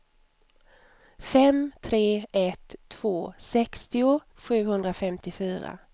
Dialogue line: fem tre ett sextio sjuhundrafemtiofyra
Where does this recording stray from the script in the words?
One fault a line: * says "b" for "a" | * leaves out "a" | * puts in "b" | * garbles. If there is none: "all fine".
* puts in "två"